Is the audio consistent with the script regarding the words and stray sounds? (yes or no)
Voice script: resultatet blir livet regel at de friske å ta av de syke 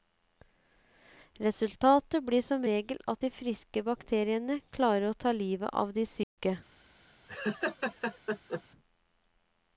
no